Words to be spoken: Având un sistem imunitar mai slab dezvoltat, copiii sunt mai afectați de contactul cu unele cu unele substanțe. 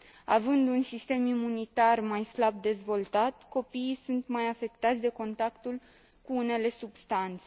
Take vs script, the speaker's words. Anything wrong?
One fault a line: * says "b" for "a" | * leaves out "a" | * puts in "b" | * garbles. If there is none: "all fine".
* leaves out "cu unele"